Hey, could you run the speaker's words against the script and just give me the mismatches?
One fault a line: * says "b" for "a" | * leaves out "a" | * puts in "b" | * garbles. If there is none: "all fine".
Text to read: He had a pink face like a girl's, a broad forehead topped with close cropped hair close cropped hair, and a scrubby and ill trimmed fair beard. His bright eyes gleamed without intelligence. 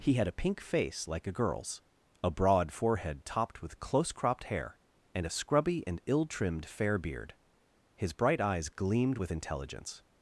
* leaves out "close cropped hair"
* says "with" for "without"